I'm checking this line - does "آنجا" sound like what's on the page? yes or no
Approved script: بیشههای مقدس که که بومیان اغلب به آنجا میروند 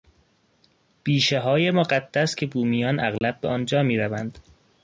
yes